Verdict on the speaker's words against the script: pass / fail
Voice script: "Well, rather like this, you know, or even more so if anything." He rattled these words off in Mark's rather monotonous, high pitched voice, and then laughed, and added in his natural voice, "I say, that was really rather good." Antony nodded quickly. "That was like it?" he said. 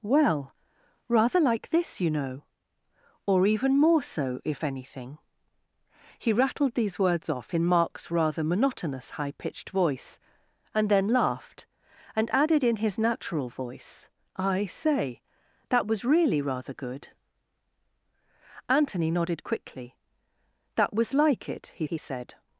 fail